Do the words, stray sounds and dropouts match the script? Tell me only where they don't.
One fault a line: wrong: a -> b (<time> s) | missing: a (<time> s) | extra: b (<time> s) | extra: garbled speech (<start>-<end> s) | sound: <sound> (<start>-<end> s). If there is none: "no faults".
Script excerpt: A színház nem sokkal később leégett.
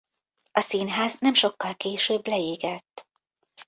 no faults